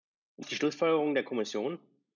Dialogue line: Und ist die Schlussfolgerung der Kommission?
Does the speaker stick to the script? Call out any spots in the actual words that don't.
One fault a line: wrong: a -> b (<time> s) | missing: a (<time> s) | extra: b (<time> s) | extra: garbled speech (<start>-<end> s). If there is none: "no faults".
no faults